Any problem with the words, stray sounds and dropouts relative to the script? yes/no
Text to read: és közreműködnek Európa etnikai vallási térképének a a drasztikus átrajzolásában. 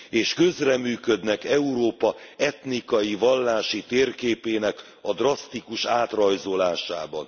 yes